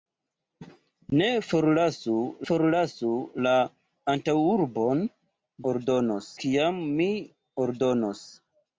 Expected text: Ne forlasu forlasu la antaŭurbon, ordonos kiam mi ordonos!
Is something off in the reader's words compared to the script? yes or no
no